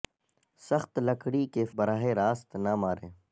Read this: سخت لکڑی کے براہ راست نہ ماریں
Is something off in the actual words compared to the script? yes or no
no